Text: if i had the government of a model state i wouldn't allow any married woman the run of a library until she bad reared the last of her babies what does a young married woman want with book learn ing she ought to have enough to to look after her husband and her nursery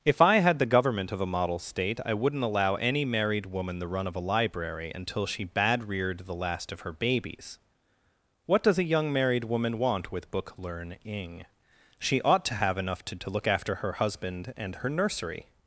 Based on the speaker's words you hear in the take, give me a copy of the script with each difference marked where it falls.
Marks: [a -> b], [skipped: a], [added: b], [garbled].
if i had the government of a model state i wouldn't allow any married woman the run of a library until she bad reared the last of her babies what does a young married woman want with book learn ing she ought to have enough to to look after her husband and her nursery